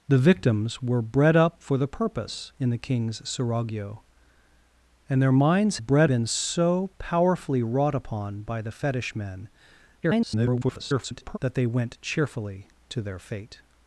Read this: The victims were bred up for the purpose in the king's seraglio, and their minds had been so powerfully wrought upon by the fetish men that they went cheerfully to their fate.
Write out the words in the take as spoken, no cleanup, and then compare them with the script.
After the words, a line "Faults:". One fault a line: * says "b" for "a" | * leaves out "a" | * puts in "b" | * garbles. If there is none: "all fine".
The victims were bred up for the purpose in the king's seraglio, and their minds bred been so powerfully wrought upon by the fetish men [garbled] that they went cheerfully to their fate.
Faults:
* says "bred" for "had"
* garbles